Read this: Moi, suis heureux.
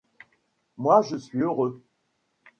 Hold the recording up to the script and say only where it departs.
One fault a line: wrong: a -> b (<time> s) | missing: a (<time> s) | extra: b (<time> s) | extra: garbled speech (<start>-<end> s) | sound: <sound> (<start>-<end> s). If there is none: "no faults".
extra: je (1.0 s)